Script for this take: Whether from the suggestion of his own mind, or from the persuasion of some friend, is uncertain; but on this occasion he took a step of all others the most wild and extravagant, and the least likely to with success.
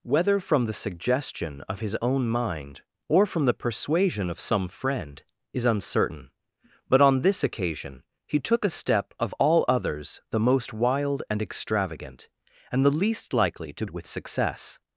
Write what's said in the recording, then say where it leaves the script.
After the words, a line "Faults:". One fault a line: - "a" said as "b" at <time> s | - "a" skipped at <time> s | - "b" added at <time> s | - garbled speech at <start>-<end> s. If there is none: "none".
Whether from the suggestion of his own mind, or from the persuasion of some friend, is uncertain; but on this occasion he took a step of all others the most wild and extravagant, and the least likely to with success.
Faults:
none